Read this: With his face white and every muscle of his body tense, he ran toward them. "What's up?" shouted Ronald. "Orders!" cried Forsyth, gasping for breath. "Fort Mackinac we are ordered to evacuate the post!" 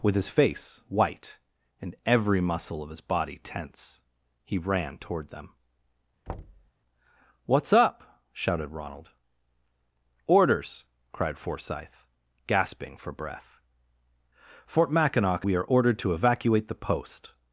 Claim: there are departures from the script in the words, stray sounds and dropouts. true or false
true